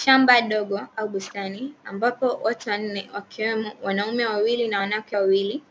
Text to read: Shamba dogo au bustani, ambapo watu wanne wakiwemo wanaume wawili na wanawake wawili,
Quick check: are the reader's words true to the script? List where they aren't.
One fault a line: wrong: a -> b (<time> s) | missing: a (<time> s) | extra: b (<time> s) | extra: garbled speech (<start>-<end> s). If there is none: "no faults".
no faults